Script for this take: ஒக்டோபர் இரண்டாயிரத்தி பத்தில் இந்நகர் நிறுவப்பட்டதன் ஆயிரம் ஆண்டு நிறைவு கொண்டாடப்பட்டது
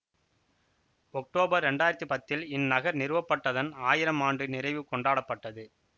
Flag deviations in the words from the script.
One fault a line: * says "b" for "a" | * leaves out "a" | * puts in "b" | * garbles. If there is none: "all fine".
all fine